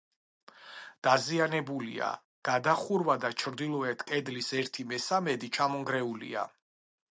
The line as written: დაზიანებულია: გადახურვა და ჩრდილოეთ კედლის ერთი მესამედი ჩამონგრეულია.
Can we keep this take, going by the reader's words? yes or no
yes